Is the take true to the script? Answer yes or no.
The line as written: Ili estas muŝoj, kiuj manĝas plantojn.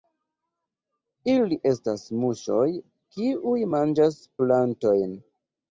yes